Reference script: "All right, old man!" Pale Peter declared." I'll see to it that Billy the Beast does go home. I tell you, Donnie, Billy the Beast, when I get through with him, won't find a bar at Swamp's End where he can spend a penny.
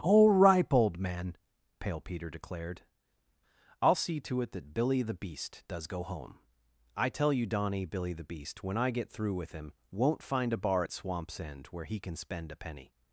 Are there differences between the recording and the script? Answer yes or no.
yes